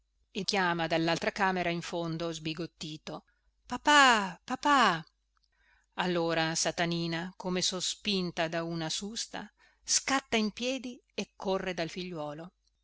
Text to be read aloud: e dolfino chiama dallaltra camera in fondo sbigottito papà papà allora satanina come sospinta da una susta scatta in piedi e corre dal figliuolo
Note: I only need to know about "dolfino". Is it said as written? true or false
false